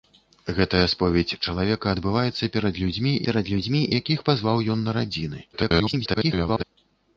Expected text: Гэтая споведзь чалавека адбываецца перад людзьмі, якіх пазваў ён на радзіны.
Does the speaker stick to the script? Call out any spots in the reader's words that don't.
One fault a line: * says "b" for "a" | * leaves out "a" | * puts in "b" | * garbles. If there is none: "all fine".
* puts in "перад людзьмі"
* garbles